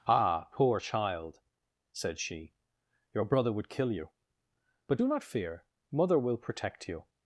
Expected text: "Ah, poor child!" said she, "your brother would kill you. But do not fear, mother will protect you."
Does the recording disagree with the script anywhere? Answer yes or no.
no